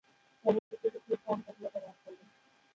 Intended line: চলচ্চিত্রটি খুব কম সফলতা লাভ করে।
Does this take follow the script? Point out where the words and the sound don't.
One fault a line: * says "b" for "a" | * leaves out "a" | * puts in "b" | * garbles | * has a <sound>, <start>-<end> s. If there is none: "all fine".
* has a dropout, 0.6-0.7 s